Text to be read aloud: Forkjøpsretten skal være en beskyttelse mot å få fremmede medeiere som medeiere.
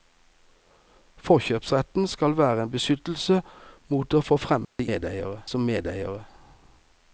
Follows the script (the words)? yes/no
yes